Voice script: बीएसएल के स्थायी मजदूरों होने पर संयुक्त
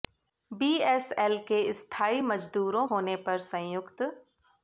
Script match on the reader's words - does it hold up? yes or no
yes